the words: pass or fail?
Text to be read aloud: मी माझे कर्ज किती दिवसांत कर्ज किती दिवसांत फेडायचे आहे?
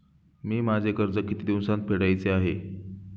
fail